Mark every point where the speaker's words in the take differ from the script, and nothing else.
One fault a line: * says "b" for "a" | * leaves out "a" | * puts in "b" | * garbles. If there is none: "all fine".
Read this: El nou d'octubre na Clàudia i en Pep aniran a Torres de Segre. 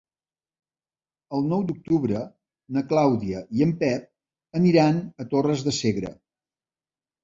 all fine